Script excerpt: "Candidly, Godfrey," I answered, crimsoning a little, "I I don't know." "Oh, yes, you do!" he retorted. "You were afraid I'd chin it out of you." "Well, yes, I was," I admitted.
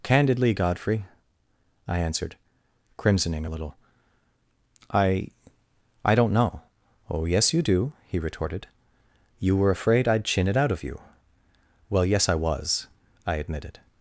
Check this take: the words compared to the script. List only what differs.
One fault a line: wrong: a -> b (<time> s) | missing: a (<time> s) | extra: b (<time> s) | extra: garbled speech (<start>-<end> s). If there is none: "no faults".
no faults